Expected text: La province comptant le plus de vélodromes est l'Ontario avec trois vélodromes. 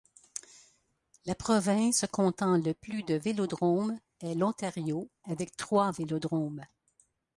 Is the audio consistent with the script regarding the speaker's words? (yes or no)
yes